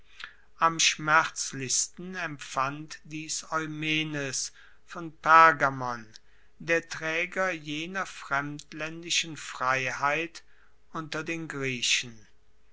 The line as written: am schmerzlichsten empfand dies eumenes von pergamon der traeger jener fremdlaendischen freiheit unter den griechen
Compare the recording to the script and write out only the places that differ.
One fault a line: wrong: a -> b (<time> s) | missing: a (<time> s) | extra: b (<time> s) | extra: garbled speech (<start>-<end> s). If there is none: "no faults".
no faults